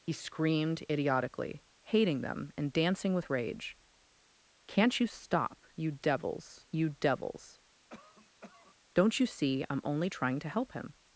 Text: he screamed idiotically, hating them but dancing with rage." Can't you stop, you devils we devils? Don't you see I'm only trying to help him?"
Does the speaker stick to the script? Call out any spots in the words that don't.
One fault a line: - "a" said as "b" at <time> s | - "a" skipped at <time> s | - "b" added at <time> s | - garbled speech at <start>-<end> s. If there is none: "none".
- "but" said as "and" at 2.6 s
- "we" said as "you" at 6.7 s